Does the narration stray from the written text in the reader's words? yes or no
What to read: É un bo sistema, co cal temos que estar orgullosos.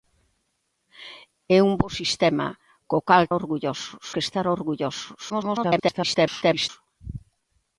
yes